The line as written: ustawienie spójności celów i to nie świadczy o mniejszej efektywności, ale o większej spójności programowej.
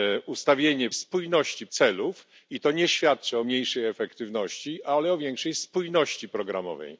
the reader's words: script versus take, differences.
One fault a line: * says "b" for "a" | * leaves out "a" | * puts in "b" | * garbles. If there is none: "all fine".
all fine